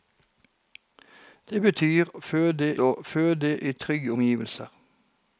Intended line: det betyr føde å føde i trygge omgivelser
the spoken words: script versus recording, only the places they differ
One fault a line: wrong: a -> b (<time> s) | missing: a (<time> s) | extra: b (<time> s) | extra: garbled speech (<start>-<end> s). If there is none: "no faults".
no faults